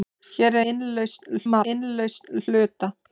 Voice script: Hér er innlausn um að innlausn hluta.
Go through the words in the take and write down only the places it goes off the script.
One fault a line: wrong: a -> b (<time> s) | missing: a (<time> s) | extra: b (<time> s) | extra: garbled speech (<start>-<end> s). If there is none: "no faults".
no faults